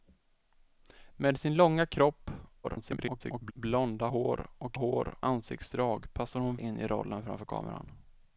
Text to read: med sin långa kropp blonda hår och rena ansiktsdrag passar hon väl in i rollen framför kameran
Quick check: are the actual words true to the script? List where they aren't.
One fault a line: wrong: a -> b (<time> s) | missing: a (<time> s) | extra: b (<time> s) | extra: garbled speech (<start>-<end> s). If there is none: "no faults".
extra: garbled speech (2.6-3.5 s)
wrong: rena -> hår (4.7 s)
missing: väl (6.6 s)